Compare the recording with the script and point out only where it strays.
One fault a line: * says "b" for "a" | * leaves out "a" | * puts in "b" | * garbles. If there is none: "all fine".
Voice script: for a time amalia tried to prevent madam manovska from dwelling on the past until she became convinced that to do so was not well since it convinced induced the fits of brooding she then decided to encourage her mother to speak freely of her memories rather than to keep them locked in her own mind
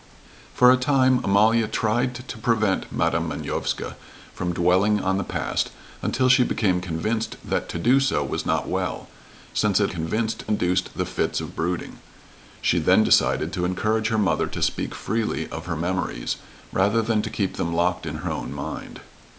all fine